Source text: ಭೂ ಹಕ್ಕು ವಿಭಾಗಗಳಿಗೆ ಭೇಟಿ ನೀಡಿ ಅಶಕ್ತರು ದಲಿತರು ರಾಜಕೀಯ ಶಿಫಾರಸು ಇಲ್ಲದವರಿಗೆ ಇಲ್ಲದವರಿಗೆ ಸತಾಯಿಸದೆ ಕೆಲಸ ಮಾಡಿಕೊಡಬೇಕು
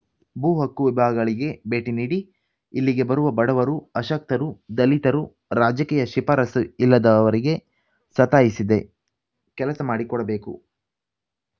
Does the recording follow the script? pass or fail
fail